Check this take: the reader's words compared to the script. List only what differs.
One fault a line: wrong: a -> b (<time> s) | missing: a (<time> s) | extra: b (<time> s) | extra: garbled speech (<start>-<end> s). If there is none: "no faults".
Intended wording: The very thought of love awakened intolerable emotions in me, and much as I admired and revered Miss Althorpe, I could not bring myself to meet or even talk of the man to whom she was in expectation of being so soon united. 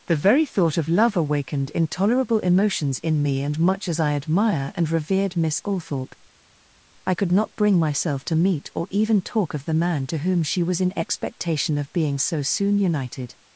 wrong: admired -> admire (4.1 s)